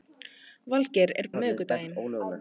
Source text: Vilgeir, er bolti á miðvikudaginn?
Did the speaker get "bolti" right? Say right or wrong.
wrong